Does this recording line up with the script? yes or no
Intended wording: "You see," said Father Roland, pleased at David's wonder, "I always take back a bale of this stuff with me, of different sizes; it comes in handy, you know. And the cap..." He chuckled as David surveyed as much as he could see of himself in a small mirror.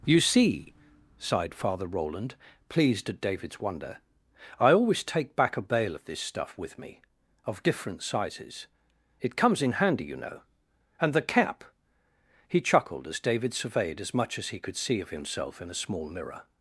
no